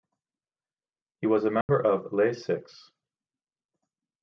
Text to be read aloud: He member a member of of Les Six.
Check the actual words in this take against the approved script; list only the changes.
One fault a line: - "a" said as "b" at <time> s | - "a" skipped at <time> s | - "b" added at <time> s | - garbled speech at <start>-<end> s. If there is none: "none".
- "member" said as "was" at 1.3 s
- "of" skipped at 2.1 s